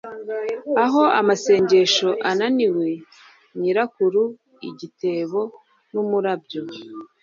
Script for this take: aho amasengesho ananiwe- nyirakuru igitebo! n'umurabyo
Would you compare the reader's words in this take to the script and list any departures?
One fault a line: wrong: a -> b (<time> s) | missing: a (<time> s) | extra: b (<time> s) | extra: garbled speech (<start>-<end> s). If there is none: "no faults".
no faults